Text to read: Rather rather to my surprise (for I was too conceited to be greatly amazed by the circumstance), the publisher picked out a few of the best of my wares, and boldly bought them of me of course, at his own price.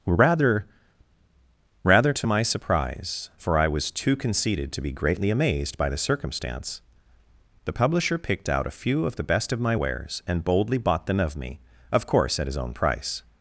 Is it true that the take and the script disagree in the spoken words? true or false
false